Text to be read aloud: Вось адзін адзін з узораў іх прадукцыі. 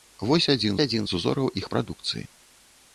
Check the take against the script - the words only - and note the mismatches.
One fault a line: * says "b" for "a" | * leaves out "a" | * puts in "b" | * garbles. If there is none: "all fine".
all fine